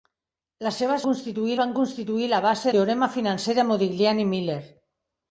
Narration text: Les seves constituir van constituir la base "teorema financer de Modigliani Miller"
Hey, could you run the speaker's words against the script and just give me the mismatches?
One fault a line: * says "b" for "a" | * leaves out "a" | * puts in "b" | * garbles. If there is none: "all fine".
all fine